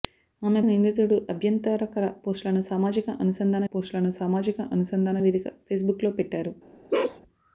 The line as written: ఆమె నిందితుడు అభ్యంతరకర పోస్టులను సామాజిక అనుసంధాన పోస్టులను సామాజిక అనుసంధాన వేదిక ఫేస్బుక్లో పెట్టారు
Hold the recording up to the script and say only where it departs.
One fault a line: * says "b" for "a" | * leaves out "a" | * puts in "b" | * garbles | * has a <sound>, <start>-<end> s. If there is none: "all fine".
* has a bark, 6.9-7.2 s